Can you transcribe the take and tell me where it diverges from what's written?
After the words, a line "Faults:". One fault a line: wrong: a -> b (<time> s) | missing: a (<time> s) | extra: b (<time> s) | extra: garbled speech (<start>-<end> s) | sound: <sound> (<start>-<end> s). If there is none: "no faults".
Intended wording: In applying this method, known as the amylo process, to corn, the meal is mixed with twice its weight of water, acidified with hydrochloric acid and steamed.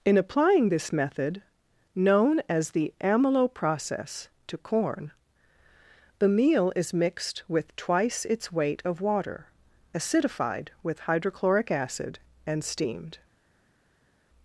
In applying this method, known as the amylo process, to corn, the meal is mixed with twice its weight of water, acidified with hydrochloric acid and steamed.
Faults:
no faults